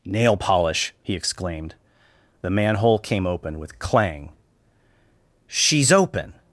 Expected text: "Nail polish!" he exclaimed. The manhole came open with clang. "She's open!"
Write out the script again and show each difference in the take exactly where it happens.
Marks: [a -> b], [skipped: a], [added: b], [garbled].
"Nail polish!" he exclaimed. The manhole came open with clang. "She's open!"